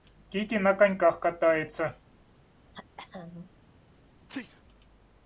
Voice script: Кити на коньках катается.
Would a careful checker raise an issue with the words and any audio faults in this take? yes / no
yes